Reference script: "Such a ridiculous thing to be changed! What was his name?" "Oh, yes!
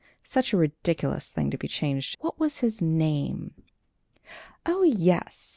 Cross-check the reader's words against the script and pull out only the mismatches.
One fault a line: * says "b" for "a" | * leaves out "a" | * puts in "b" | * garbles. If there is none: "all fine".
all fine